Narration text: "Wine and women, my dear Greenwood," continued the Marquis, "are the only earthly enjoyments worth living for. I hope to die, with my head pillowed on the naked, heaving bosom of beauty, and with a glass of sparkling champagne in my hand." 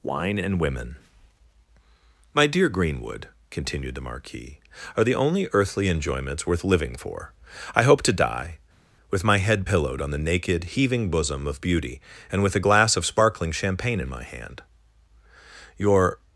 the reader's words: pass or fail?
fail